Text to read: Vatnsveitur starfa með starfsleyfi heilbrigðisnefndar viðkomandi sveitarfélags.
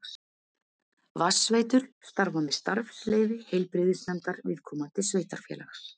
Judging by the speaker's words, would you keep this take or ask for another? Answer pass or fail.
pass